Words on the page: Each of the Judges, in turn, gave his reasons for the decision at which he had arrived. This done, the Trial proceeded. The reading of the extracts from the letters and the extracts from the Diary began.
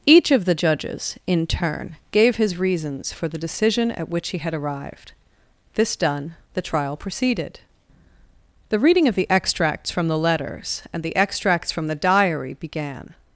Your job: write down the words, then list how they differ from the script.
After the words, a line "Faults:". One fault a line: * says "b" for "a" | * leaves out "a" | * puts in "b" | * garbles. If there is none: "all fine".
Each of the Judges, in turn, gave his reasons for the decision at which he had arrived. This done, the Trial proceeded. The reading of the extracts from the letters and the extracts from the Diary began.
Faults:
all fine